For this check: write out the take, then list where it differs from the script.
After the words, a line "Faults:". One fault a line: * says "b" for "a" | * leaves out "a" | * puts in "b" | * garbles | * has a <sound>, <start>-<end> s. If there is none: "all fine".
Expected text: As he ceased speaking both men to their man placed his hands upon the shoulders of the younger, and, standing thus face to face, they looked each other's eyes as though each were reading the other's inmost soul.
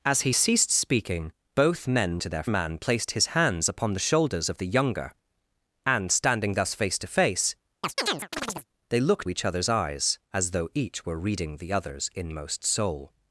As he ceased speaking both men to their man placed his hands upon the shoulders of the younger, and, standing thus face to face, they looked each other's eyes as though each were reading the other's inmost soul.
Faults:
* has a chirp, 7.8-8.7 s